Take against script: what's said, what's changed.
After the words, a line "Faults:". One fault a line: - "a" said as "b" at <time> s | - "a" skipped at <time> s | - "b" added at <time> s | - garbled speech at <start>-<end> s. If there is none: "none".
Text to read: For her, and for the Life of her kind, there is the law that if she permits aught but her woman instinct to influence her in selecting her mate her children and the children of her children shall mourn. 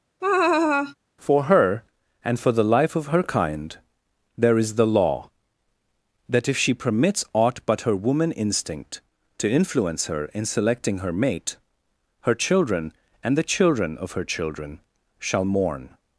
For her, and for the Life of her kind, there is the law that if she permits aught but her woman instinct to influence her in selecting her mate her children and the children of her children shall mourn.
Faults:
none